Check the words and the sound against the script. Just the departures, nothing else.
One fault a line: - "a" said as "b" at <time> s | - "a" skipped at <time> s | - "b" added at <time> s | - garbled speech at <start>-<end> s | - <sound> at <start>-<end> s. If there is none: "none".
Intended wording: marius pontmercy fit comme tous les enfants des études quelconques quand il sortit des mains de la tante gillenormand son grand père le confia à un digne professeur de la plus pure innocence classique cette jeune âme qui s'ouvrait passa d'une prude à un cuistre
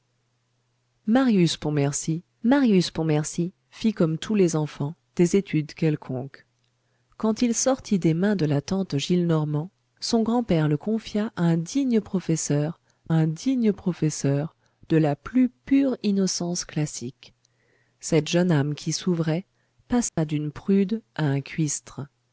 - "marius pontmercy" added at 2.4 s
- "un digne professeur" added at 13.1 s
- dropout at 20.1-20.2 s